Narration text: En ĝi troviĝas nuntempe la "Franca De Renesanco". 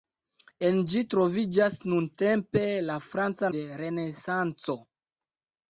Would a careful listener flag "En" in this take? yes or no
no